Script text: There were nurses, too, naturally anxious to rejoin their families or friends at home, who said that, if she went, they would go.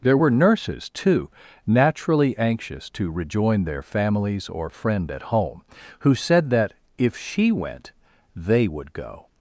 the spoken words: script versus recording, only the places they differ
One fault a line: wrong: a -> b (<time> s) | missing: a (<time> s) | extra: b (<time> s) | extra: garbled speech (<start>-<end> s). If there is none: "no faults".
wrong: friends -> friend (4.7 s)